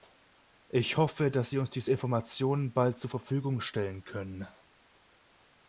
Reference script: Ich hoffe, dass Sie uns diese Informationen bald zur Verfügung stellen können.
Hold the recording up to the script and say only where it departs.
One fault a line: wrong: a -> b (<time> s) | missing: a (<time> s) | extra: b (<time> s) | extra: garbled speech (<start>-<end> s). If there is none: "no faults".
no faults